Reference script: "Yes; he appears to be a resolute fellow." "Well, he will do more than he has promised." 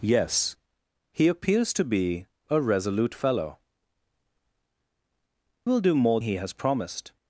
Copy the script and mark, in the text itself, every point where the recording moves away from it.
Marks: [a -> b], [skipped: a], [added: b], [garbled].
"Yes; he appears to be a resolute fellow." [skipped: "Well, he] will do more [skipped: than] he has promised."